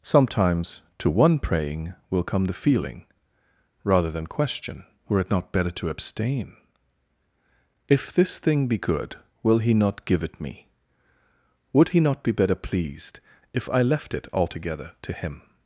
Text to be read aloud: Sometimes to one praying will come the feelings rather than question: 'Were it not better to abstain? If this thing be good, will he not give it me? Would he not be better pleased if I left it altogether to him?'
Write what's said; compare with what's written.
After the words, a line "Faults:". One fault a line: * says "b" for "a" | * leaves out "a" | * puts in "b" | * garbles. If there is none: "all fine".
Sometimes to one praying will come the feeling rather than question: 'Were it not better to abstain? If this thing be good, will he not give it me? Would he not be better pleased if I left it altogether to him?'
Faults:
* says "feeling" for "feelings"